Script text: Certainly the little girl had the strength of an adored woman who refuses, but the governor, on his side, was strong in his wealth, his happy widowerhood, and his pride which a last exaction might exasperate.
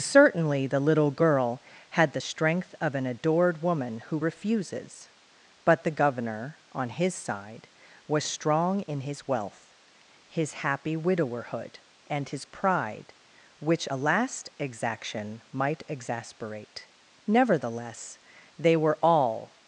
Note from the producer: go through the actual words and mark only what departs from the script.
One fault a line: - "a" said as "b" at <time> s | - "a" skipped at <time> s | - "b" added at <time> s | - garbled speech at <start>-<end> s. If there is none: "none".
- "Nevertheless they were all" added at 17.3 s